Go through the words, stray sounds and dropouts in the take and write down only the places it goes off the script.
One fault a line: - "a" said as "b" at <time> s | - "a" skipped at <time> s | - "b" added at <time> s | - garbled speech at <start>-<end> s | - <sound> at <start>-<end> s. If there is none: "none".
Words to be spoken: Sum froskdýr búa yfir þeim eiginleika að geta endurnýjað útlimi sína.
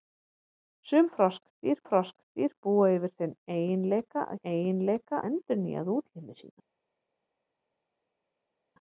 - "froskdýr" added at 1.9 s
- "geta" said as "eiginleika" at 4.5 s